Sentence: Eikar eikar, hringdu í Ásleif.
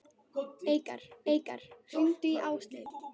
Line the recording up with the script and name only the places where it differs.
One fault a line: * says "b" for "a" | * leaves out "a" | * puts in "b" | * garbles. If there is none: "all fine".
all fine